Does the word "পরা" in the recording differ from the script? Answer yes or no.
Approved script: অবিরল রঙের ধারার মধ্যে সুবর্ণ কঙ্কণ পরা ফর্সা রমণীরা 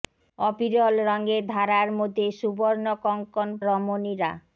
yes